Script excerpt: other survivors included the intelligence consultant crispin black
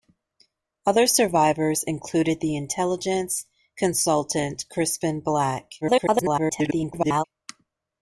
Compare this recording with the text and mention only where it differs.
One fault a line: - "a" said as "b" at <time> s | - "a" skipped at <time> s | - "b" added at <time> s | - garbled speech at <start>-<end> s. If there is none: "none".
- garbled speech at 5.8-7.2 s